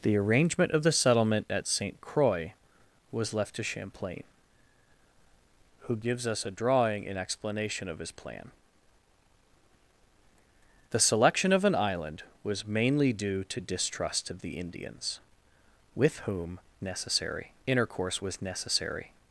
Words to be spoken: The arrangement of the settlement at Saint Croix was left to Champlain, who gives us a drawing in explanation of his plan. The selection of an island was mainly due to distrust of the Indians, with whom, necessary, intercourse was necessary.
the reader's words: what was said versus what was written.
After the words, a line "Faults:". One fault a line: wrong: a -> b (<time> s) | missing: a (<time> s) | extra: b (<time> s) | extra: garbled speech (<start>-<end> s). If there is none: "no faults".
The arrangement of the settlement at Saint Croix was left to Champlain, who gives us a drawing in explanation of his plan. The selection of an island was mainly due to distrust of the Indians, with whom, necessary, intercourse was necessary.
Faults:
no faults